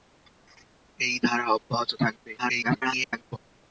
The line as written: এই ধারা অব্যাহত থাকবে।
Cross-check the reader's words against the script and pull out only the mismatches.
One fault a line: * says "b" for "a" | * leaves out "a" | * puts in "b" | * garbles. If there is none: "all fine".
* garbles